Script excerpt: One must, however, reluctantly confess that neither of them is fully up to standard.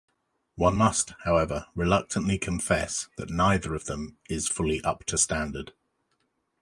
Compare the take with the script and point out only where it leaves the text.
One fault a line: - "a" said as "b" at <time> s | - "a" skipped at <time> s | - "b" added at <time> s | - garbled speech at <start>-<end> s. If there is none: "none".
none